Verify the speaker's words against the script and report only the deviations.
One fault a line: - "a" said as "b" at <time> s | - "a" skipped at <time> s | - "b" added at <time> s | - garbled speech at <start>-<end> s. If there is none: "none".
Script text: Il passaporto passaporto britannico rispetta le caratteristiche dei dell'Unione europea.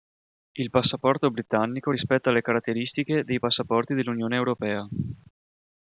- "passaporto" skipped at 1.3 s
- "passaporti" added at 3.4 s